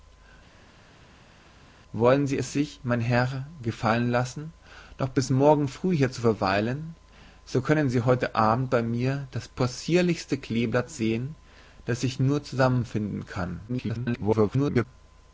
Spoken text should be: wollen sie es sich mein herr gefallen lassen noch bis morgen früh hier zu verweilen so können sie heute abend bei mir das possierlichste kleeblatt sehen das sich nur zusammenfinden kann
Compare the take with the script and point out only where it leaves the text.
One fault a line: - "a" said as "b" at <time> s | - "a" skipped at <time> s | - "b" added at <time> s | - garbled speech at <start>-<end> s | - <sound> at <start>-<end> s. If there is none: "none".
- garbled speech at 13.7-14.9 s